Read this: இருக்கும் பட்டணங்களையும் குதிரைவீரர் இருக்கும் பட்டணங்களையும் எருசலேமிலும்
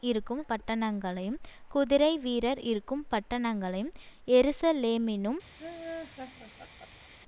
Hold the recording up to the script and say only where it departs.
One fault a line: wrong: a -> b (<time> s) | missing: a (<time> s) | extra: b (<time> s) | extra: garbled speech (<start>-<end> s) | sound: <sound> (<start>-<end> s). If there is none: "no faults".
sound: laugh (5.6-7.1 s)